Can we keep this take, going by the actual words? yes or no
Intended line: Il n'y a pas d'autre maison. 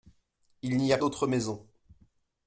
no